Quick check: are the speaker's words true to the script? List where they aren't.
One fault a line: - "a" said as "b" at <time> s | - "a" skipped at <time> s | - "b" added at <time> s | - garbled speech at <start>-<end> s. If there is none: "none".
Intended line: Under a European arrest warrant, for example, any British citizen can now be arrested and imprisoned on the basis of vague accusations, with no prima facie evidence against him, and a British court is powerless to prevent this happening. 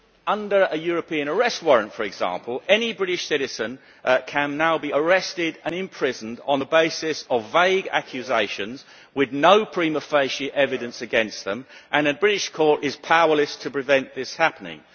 - "him" said as "them" at 11.4 s